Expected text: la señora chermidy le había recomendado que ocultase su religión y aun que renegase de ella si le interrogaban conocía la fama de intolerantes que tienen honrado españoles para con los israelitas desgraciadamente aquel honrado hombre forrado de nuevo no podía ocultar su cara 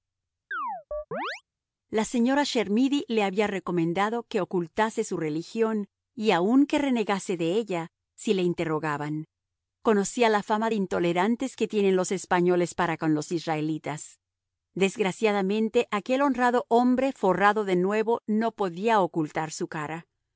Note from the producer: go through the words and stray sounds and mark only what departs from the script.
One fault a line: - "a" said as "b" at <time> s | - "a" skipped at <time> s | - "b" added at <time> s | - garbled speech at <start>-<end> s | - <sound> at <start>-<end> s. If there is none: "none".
- chirp at 0.5-1.4 s
- "honrado" said as "los" at 12.0 s